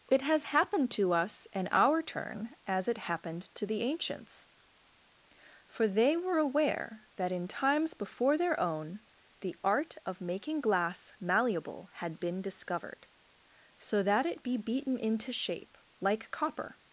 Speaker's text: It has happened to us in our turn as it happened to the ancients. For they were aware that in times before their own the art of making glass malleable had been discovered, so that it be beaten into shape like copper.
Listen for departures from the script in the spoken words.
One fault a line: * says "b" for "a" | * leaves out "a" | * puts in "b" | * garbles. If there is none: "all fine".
all fine